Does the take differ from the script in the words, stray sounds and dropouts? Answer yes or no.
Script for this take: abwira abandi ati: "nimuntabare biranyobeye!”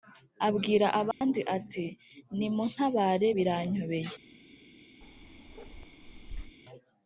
yes